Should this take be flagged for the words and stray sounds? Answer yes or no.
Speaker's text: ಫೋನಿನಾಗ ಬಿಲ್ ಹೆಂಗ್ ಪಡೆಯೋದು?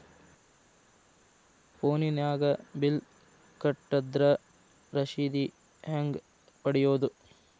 yes